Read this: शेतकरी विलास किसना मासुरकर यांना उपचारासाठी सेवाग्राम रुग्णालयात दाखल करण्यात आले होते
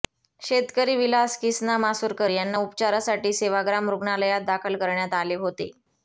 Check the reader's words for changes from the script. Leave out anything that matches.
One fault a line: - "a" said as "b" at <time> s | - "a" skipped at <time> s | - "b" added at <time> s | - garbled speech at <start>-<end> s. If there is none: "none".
none